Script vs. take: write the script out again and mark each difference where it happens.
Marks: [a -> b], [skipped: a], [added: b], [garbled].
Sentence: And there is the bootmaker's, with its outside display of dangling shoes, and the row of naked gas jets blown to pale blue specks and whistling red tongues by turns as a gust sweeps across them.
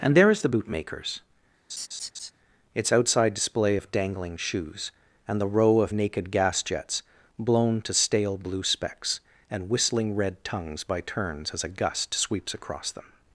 And there is the bootmaker's, [skipped: with] its outside display of dangling shoes, and the row of naked gas jets blown to [pale -> stale] blue specks and whistling red tongues by turns as a gust sweeps across them.